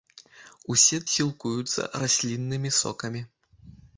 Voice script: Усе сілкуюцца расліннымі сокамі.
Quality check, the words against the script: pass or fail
pass